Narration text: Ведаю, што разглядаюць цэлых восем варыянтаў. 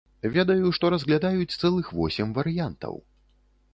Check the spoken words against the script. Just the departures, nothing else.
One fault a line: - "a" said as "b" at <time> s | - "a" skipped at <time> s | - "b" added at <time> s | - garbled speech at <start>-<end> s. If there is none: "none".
none